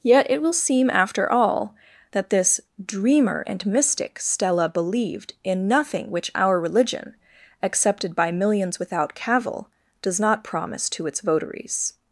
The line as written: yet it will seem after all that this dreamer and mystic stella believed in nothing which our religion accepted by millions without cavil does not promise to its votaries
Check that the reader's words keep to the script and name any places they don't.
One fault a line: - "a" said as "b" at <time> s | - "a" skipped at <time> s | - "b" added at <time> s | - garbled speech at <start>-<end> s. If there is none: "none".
none